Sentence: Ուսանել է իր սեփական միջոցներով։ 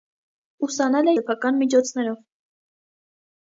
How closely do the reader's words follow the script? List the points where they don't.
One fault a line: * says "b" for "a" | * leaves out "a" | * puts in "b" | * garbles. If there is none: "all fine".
* leaves out "իր"